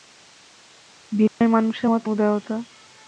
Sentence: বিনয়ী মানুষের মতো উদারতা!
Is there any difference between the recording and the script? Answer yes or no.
no